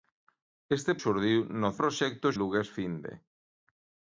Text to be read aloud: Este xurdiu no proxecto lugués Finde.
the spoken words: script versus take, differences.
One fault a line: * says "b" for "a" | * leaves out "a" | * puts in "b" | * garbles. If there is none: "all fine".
all fine